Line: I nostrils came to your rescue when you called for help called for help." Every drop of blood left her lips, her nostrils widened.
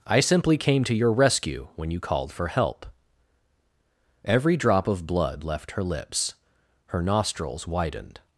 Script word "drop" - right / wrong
right